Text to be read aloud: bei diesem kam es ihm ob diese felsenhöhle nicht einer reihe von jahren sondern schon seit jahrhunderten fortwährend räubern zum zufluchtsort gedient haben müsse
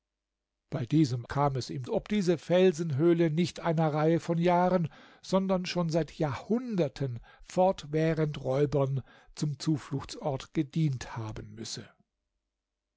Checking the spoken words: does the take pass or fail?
pass